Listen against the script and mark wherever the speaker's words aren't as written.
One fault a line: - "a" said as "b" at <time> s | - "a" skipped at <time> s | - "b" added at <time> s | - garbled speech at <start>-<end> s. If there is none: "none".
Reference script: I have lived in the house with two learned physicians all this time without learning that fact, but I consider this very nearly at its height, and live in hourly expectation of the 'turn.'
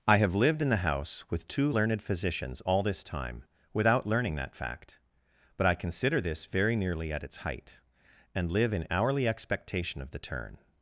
none